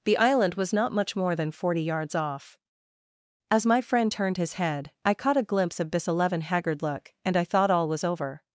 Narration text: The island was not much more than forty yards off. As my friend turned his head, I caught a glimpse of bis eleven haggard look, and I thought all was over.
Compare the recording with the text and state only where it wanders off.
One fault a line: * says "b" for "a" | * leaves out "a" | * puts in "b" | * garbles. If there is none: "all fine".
all fine